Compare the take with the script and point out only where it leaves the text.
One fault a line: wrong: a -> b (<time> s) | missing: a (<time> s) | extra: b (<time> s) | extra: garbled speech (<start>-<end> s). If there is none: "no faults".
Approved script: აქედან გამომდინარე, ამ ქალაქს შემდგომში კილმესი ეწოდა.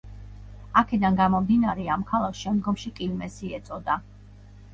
no faults